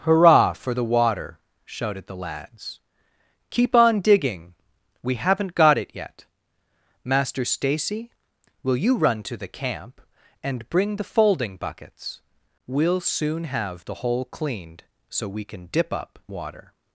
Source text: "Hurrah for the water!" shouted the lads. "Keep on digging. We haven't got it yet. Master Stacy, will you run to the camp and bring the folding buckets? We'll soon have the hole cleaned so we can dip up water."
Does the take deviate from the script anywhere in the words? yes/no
no